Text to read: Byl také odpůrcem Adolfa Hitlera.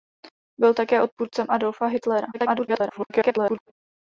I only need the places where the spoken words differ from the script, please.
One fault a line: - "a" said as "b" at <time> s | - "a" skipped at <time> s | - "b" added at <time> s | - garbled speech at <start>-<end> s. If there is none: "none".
- garbled speech at 2.3-3.7 s